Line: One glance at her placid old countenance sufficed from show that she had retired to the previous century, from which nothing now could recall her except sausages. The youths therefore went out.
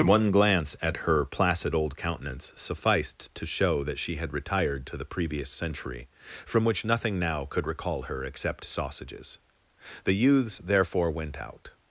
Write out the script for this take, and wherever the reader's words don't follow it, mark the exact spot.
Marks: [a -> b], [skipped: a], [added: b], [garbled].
One glance at her placid old countenance sufficed [from -> to] show that she had retired to the previous century, from which nothing now could recall her except sausages. The youths therefore went out.